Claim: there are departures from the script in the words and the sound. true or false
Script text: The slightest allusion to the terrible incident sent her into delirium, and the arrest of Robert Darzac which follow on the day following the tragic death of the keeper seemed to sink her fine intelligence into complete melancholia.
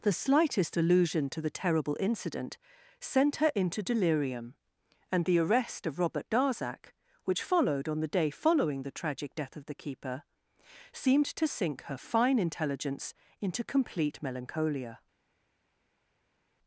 true